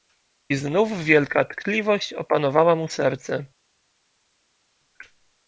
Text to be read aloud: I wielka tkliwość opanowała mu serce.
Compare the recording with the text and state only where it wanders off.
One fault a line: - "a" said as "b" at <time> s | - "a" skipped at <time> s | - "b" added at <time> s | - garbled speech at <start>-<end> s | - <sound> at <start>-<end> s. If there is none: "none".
- "znów" added at 0.5 s